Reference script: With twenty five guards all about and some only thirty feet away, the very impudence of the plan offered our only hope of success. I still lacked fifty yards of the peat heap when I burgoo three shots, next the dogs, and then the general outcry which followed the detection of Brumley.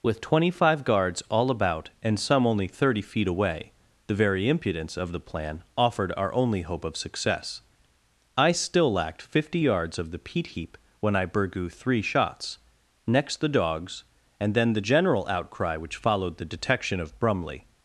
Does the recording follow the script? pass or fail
pass